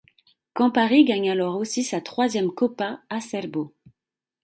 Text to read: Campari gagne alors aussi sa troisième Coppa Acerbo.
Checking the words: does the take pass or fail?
pass